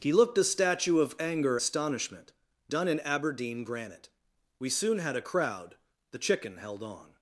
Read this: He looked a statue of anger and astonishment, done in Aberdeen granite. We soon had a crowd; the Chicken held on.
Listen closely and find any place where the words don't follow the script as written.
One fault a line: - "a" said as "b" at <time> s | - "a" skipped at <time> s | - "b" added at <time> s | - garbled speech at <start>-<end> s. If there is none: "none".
- "and" skipped at 1.6 s